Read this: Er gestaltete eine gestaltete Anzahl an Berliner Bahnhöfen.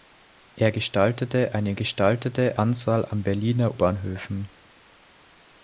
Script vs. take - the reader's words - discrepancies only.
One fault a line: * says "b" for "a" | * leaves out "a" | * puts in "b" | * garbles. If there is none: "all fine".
all fine